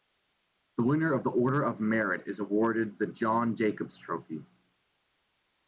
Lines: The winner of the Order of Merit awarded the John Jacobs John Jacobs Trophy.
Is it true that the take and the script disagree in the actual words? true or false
true